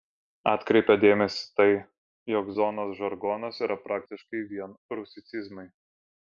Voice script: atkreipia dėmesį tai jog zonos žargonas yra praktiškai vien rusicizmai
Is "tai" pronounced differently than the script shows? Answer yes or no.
no